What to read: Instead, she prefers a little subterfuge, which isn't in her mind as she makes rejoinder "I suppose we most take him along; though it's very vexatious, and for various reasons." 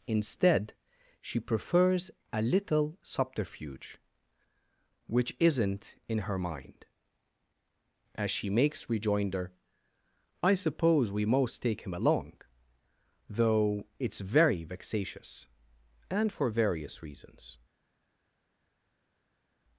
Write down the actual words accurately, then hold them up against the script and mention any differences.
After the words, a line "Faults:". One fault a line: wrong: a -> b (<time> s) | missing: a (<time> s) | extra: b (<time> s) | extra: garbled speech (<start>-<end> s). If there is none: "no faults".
Instead, she prefers a little subterfuge, which isn't in her mind as she makes rejoinder "I suppose we most take him along; though it's very vexatious, and for various reasons."
Faults:
no faults